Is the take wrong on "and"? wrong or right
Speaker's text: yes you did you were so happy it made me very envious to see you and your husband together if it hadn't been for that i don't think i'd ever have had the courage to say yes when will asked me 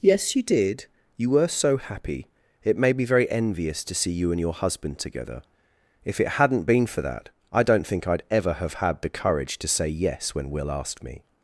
right